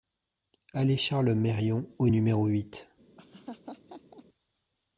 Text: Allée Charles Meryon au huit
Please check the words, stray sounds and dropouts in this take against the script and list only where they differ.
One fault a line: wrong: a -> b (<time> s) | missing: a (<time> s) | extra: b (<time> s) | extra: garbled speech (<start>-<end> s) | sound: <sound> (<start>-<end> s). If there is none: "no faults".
extra: numéro (2.0 s)
sound: laugh (3.2-4.2 s)